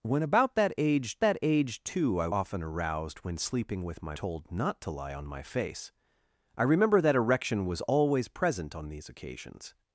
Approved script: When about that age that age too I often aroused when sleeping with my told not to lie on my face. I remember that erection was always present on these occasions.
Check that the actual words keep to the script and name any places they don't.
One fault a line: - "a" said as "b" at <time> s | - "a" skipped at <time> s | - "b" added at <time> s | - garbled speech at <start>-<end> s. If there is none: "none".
none